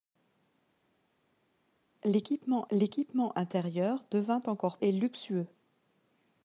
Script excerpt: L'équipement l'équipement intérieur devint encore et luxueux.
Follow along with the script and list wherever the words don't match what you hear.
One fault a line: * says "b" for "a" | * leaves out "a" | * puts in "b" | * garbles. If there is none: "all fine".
all fine